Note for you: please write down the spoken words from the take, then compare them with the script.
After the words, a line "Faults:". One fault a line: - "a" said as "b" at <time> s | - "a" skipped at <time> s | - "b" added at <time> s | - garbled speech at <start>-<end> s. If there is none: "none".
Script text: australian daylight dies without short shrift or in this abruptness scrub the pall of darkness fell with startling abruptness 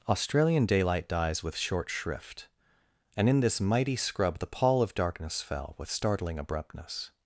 australian daylight dies with short shrift and in this mighty scrub the pall of darkness fell with startling abruptness
Faults:
- "without" said as "with" at 1.4 s
- "or" said as "and" at 3.1 s
- "abruptness" said as "mighty" at 3.6 s